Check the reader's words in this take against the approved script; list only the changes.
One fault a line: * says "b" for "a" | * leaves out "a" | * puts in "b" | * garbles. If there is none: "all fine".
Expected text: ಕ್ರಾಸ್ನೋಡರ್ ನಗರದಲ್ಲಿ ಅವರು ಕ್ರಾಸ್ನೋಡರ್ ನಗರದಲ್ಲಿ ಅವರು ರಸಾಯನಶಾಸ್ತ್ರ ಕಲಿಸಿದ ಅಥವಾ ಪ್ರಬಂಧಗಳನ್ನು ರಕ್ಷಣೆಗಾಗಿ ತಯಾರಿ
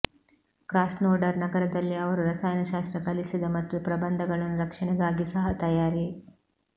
* leaves out "ಕ್ರಾಸ್ನೋಡರ್ ನಗರದಲ್ಲಿ ಅವರು"
* says "ಮತ್ತು" for "ಅಥವಾ"
* puts in "ಸಹ"